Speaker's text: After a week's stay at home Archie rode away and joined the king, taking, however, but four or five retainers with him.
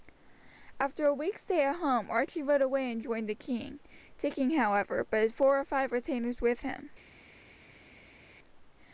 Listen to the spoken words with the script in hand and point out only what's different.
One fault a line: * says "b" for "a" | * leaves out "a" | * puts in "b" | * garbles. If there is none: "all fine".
all fine